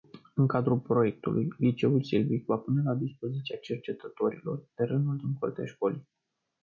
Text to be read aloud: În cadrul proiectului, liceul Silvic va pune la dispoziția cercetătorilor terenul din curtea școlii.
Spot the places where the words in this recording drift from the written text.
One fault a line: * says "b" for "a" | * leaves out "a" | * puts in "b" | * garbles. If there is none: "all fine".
all fine